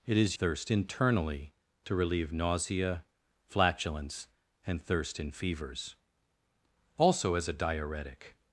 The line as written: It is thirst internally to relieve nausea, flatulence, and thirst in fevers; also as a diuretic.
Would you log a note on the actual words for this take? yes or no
no